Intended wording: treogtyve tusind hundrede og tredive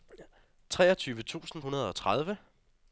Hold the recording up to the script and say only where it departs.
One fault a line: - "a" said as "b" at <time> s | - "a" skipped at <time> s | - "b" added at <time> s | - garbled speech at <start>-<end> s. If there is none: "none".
none